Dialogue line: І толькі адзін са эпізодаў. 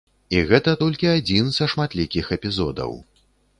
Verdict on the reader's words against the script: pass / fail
fail